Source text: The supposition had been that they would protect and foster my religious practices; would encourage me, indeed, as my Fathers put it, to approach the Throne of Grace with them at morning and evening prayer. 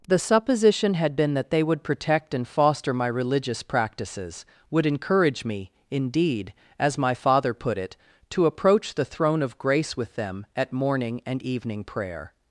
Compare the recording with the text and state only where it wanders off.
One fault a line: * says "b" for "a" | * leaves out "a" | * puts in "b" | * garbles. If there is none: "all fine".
* says "Father" for "Fathers"